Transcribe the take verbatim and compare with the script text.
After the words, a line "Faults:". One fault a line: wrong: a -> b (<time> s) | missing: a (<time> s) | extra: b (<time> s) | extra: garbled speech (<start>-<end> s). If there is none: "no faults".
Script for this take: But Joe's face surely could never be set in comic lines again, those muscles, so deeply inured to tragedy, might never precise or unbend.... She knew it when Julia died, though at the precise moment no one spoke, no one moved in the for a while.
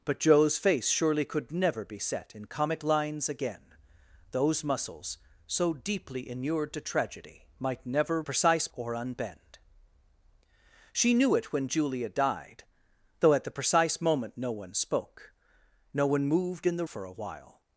But Joe's face surely could never be set in comic lines again, those muscles, so deeply inured to tragedy, might never precise or unbend.... She knew it when Julia died, though at the precise moment no one spoke, no one moved in the for a while.
Faults:
no faults